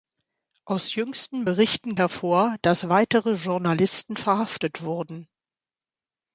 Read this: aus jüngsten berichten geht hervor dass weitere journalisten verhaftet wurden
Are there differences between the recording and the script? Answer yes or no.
yes